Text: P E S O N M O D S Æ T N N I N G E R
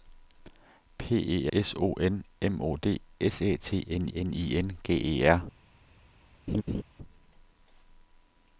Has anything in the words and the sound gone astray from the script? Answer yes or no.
yes